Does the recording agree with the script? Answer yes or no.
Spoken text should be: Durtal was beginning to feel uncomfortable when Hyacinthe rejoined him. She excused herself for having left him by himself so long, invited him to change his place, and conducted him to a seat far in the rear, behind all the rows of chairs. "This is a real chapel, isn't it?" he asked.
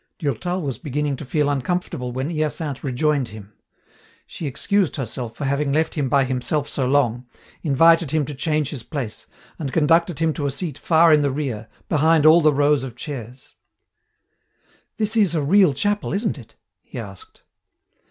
yes